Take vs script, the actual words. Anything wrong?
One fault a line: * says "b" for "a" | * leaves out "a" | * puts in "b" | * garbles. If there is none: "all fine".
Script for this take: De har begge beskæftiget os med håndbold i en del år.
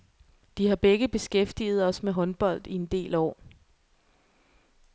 all fine